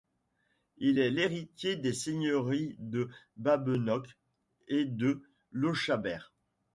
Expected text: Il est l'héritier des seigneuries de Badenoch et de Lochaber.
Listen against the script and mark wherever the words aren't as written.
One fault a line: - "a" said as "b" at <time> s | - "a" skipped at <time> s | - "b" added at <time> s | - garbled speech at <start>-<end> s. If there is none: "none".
none